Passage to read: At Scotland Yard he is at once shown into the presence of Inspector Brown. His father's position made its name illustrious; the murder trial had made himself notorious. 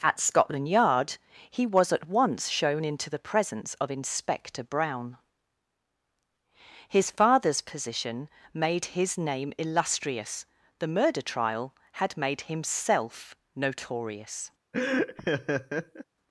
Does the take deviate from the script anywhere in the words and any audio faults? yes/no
yes